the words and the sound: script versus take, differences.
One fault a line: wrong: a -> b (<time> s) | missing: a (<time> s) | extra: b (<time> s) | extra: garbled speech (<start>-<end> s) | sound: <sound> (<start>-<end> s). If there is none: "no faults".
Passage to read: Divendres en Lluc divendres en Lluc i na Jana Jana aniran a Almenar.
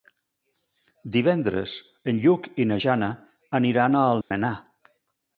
missing: divendres en Lluc (2.5 s)
missing: Jana (3.1 s)
sound: dropout (4.2-4.3 s)